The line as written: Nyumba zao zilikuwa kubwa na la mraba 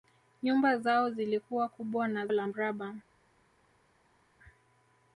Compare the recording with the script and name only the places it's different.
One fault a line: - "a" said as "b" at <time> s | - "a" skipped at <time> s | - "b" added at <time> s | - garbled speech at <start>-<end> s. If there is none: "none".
none